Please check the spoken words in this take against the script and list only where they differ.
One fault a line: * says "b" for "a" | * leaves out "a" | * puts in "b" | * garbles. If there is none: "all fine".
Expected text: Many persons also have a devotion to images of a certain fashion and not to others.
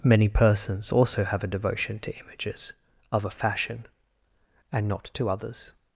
* leaves out "certain"